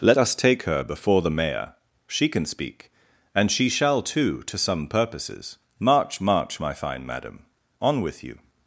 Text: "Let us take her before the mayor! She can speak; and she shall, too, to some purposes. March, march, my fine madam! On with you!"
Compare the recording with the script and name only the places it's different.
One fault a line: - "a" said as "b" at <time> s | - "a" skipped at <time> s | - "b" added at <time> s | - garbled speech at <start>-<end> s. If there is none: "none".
none